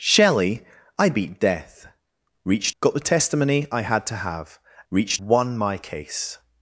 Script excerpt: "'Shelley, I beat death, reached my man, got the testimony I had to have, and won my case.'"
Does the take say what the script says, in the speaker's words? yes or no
no